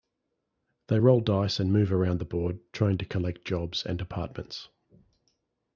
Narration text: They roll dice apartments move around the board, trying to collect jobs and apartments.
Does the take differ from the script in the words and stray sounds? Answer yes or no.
yes